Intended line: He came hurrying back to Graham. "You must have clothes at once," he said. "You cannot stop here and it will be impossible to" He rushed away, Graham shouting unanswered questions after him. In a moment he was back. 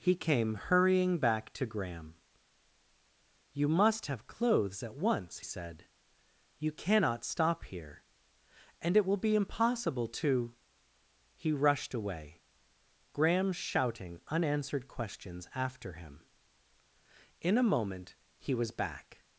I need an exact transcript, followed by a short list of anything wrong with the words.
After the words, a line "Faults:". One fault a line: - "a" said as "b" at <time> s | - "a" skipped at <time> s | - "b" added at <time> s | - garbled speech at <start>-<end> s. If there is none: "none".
He came hurrying back to Graham. "You must have clothes at once," said. "You cannot stop here and it will be impossible to" He rushed away, Graham shouting unanswered questions after him. In a moment he was back.
Faults:
- "he" skipped at 5.4 s